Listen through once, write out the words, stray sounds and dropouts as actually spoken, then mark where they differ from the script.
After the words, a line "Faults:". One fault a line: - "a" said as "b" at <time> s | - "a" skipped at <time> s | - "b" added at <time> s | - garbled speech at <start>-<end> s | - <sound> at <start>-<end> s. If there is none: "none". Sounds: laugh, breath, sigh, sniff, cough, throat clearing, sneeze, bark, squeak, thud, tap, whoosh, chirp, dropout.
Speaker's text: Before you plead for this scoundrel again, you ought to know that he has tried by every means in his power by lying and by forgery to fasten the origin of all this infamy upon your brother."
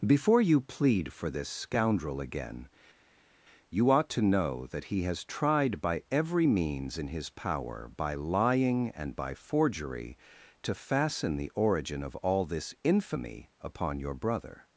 Before you plead for this scoundrel again, you ought to know that he has tried by every means in his power by lying and by forgery to fasten the origin of all this infamy upon your brother."
Faults:
none